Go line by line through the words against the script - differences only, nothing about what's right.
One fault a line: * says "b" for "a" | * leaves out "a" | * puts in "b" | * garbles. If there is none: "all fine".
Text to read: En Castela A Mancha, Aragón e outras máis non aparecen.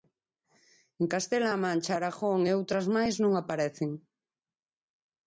all fine